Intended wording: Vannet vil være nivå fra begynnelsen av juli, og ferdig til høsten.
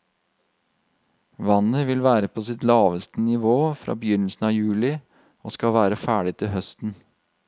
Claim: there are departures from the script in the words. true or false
true